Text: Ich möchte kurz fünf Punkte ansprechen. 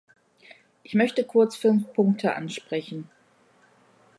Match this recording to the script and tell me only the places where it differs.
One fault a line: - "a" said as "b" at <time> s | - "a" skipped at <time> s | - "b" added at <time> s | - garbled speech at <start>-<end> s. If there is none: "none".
none